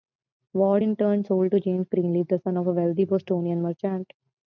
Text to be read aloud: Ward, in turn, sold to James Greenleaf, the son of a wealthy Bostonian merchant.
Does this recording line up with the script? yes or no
yes